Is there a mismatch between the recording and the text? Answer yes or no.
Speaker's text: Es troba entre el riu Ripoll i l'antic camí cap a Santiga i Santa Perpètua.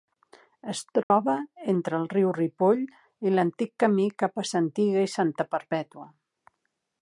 no